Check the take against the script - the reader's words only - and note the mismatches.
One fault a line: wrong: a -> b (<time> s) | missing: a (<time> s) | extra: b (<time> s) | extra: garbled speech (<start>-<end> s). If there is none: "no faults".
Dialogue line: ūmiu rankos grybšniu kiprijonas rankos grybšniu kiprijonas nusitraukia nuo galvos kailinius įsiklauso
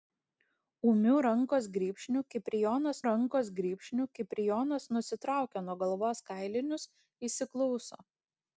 no faults